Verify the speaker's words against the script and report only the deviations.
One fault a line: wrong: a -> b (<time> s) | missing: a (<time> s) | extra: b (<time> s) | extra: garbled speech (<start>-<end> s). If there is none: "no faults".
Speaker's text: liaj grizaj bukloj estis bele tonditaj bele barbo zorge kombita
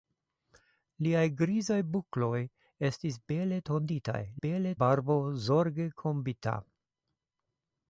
no faults